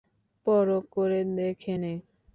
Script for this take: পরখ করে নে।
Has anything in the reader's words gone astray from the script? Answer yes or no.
yes